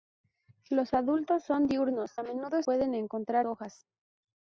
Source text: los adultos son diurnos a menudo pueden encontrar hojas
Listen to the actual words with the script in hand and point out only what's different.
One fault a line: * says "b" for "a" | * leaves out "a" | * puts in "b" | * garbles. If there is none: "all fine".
all fine